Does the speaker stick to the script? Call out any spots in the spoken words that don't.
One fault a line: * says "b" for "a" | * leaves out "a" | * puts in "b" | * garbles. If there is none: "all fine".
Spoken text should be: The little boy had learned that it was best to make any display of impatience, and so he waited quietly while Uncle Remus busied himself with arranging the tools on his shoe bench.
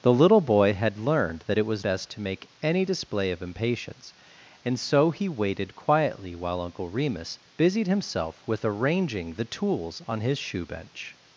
all fine